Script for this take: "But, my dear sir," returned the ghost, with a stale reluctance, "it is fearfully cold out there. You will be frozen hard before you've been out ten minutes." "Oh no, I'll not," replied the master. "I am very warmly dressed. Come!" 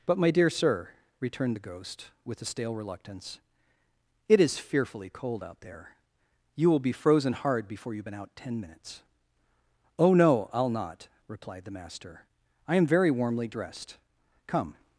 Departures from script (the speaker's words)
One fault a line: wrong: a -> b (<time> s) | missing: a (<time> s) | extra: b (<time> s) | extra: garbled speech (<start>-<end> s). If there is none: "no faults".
no faults